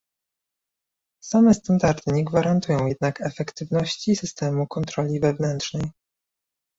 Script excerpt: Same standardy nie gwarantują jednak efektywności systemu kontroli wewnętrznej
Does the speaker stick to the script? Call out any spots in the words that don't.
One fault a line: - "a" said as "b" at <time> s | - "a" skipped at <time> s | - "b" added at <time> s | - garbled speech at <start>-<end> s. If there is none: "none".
none